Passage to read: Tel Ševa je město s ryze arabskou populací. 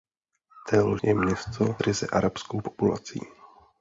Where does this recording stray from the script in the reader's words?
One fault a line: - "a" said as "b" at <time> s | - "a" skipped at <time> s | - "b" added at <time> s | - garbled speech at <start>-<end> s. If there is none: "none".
- "Ševa" skipped at 1.0 s
- "s" skipped at 1.8 s